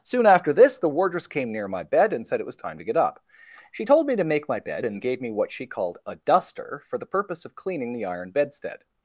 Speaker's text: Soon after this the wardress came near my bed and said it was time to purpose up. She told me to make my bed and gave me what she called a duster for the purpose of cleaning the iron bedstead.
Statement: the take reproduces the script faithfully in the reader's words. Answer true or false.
false